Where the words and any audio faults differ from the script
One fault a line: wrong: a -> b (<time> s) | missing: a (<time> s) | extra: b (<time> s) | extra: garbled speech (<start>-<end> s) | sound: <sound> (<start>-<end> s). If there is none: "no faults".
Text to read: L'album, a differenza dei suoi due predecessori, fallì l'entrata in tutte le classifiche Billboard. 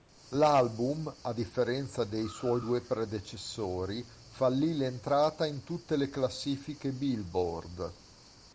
no faults